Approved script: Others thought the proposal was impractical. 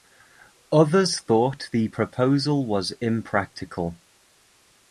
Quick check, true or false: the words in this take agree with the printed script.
true